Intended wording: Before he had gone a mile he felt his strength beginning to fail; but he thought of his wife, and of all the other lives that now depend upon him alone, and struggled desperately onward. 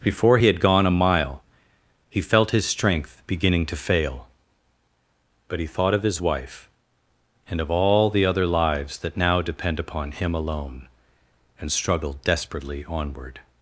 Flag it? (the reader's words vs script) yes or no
no